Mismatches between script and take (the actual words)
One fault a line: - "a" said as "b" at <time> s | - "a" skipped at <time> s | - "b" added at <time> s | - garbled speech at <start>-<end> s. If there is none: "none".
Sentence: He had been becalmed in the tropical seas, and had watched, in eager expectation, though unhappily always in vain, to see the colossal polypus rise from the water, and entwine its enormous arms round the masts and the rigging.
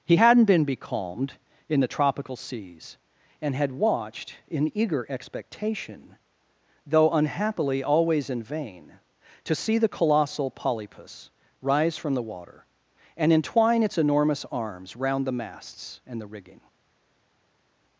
- "had" said as "hadn't" at 0.1 s